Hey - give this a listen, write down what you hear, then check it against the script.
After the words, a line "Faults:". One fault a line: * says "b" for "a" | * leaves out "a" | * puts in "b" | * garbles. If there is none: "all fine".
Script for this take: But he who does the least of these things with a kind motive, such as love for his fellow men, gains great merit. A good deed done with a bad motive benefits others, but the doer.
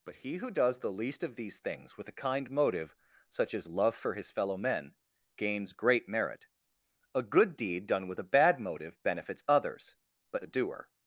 But he who does the least of these things with a kind motive, such as love for his fellow men, gains great merit. A good deed done with a bad motive benefits others, but the doer.
Faults:
all fine